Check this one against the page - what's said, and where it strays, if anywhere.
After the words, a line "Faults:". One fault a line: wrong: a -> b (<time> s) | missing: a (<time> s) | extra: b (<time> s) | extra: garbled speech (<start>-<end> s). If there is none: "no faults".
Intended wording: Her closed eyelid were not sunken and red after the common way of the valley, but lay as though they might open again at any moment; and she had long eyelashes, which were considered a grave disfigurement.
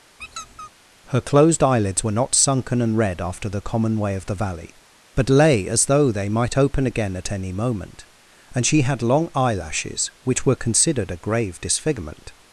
Her closed eyelids were not sunken and red after the common way of the valley, but lay as though they might open again at any moment; and she had long eyelashes, which were considered a grave disfigurement.
Faults:
wrong: eyelid -> eyelids (1.6 s)